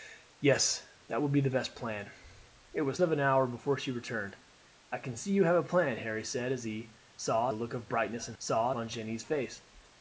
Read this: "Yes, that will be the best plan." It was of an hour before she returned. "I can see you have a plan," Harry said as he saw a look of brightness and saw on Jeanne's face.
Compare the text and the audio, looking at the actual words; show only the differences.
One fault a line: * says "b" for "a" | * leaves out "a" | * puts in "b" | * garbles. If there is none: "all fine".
all fine